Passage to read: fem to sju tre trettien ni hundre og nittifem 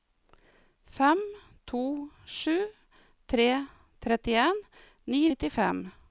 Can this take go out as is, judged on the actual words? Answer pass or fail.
fail